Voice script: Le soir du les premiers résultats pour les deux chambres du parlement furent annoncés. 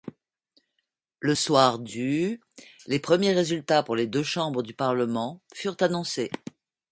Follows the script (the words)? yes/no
yes